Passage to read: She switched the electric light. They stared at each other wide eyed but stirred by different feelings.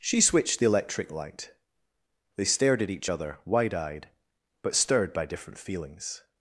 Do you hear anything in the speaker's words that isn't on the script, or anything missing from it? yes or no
no